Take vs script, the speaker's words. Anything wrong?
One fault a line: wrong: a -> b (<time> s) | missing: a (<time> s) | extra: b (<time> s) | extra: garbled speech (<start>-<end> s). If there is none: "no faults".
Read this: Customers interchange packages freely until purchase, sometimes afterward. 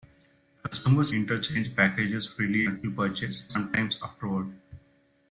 no faults